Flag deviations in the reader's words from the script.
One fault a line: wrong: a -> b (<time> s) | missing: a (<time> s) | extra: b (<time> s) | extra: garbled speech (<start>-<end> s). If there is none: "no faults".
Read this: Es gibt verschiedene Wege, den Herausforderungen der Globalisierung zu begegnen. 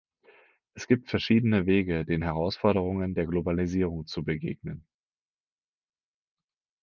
no faults